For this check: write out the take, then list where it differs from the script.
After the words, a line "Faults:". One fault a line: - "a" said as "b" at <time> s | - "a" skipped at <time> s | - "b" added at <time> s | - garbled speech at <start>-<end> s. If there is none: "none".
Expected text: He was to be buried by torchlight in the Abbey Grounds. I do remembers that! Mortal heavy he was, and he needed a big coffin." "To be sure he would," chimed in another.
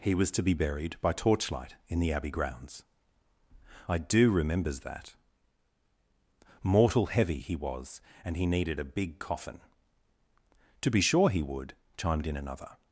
He was to be buried by torchlight in the Abbey Grounds. I do remembers that! Mortal heavy he was, and he needed a big coffin." "To be sure he would," chimed in another.
Faults:
none